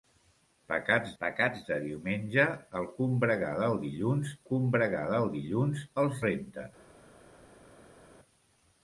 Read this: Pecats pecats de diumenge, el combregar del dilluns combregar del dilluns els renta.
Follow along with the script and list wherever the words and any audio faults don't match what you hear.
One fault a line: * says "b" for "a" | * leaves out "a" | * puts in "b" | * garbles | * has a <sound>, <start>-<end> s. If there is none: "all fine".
all fine